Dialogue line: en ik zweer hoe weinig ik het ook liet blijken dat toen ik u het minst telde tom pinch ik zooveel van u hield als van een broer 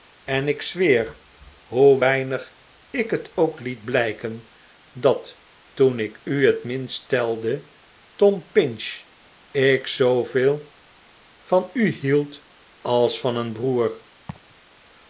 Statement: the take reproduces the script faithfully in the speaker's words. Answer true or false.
true